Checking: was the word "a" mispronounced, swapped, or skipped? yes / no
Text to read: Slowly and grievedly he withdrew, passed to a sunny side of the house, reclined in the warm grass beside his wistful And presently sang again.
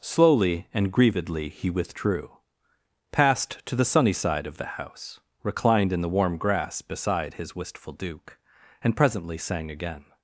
yes